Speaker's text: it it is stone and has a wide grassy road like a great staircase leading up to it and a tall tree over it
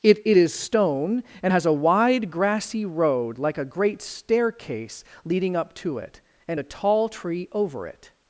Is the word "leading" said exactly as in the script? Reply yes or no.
yes